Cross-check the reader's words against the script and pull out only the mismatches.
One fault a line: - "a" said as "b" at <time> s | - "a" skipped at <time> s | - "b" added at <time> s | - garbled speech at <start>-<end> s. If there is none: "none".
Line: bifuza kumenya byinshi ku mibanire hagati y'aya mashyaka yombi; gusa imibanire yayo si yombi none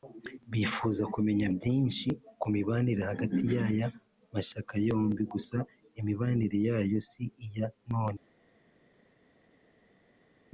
- "yombi" said as "iya" at 7.5 s